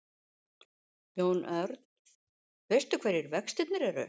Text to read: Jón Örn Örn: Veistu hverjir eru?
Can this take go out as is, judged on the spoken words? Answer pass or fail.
fail